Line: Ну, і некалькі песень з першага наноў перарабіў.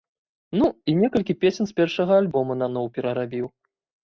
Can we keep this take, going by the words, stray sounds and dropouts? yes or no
no